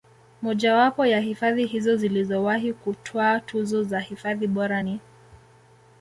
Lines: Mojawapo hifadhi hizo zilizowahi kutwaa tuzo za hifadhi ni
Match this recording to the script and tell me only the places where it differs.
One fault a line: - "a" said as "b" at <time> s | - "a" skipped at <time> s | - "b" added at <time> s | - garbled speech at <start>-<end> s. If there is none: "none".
- "ya" added at 1.1 s
- "bora" added at 4.5 s